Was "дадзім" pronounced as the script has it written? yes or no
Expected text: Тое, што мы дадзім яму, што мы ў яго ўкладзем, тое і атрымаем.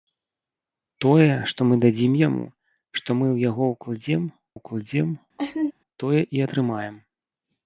yes